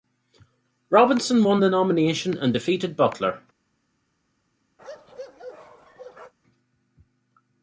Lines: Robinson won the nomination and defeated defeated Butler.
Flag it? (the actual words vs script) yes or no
yes